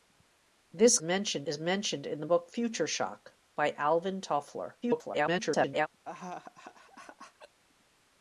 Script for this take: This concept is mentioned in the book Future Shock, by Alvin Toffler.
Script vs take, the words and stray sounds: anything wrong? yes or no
yes